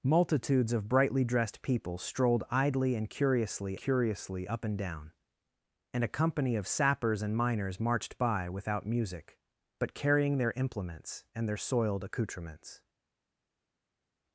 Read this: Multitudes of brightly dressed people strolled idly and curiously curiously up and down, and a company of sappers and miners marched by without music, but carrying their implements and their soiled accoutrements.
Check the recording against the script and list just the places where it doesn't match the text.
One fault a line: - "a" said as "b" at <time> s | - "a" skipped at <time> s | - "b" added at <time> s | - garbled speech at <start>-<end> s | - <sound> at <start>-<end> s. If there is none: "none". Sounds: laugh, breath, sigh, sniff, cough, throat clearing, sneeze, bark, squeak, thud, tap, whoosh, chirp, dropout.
none